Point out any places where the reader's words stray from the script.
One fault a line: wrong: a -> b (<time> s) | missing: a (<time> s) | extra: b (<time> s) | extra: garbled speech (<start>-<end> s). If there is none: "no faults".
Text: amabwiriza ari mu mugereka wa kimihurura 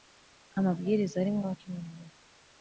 missing: mugereka (1.4 s)